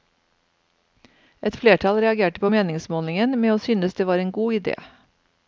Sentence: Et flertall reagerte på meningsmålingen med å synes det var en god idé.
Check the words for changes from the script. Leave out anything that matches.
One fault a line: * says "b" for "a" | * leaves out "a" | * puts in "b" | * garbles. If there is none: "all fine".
all fine